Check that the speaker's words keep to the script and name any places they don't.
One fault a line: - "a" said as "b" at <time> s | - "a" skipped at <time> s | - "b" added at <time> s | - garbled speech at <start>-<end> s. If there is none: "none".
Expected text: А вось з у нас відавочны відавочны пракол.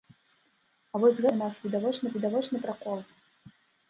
none